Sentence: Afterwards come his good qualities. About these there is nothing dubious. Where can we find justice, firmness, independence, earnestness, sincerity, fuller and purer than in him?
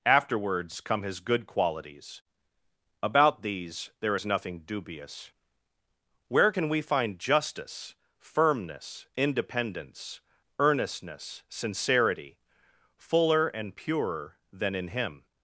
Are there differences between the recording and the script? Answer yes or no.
no